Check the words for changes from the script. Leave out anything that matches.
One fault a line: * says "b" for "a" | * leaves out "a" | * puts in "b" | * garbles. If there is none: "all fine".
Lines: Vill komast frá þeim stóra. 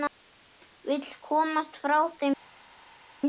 all fine